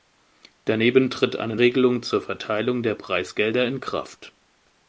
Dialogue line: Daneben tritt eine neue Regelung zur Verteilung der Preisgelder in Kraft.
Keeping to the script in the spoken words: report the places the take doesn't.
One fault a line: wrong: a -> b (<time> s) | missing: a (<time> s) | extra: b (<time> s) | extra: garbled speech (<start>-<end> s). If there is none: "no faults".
missing: neue (1.6 s)